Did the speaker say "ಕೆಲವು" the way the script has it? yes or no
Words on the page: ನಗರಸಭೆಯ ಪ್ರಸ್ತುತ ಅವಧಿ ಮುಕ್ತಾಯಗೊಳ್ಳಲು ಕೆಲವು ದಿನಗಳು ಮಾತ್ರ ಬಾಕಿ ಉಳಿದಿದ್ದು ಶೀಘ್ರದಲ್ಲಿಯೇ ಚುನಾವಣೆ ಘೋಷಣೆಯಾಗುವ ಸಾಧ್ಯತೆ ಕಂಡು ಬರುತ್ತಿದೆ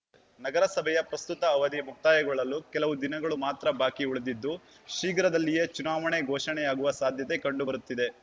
yes